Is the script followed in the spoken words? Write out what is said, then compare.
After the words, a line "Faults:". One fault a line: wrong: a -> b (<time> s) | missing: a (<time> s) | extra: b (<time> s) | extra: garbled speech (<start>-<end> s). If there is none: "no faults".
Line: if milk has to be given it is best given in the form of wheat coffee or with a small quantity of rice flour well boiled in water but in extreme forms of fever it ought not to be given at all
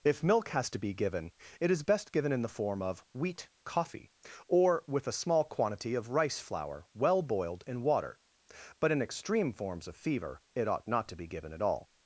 if milk has to be given it is best given in the form of wheat coffee or with a small quantity of rice flour well boiled in water but in extreme forms of fever it ought not to be given at all
Faults:
no faults